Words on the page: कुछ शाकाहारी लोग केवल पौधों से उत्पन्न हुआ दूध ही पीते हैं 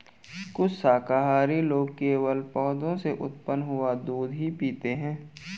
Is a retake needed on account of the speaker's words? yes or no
no